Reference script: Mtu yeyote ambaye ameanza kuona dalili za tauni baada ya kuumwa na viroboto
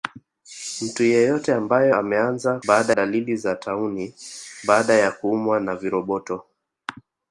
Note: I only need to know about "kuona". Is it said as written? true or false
false